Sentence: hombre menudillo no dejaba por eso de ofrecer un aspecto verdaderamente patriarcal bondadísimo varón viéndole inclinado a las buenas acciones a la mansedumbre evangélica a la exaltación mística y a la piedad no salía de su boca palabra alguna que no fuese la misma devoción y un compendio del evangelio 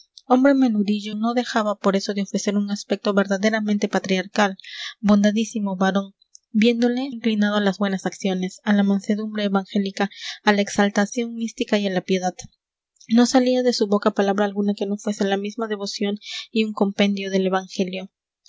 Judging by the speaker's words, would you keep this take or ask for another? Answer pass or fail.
pass